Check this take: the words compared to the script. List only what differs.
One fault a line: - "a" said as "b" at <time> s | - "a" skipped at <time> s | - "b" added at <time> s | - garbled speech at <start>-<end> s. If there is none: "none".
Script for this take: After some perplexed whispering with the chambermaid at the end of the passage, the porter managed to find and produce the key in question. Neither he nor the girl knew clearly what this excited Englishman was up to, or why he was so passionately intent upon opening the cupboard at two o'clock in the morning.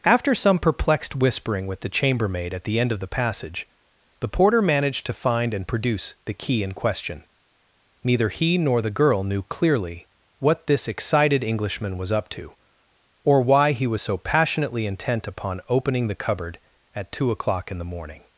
none